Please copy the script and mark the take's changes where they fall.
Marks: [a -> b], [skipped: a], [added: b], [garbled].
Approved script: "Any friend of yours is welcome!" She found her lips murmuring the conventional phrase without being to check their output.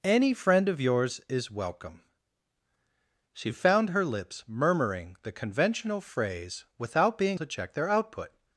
"Any friend of yours is welcome!" She found her lips murmuring the conventional phrase without being to check their output.